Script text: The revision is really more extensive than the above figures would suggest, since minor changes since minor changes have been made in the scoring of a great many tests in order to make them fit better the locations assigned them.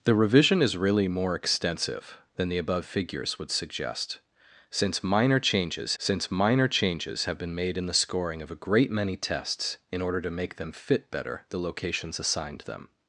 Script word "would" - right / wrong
right